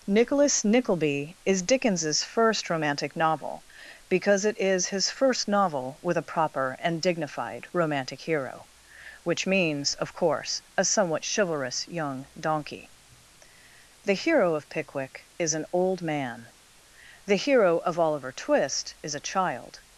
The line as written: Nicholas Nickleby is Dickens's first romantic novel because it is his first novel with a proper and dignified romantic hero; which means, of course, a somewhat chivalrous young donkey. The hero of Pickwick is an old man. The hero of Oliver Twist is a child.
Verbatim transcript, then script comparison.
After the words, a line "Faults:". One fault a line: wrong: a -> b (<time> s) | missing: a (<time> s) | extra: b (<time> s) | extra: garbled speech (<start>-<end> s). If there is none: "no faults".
Nicholas Nickleby is Dickens's first romantic novel because it is his first novel with a proper and dignified romantic hero; which means, of course, a somewhat chivalrous young donkey. The hero of Pickwick is an old man. The hero of Oliver Twist is a child.
Faults:
no faults